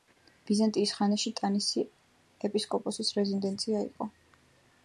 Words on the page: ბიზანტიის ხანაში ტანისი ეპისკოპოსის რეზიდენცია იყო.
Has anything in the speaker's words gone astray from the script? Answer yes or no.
no